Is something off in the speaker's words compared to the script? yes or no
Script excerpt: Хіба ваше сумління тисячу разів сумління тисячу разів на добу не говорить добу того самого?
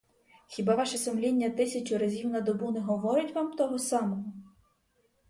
yes